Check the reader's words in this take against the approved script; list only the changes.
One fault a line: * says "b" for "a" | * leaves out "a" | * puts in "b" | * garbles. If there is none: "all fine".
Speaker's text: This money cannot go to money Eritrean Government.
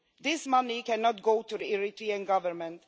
* says "the" for "money"